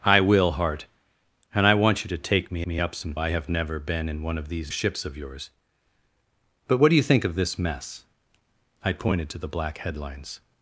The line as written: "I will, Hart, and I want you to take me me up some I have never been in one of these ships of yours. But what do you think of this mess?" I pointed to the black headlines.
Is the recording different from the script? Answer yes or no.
no